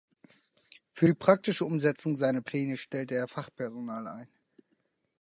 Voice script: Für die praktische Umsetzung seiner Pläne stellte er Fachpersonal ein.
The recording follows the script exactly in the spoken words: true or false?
true